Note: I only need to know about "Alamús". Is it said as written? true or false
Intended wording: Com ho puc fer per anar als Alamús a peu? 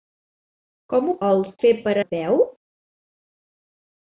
false